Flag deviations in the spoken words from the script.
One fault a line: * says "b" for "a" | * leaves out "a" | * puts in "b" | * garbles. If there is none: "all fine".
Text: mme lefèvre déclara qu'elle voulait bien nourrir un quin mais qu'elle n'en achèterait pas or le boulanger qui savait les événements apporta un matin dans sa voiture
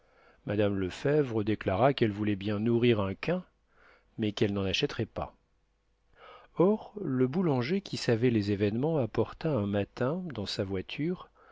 all fine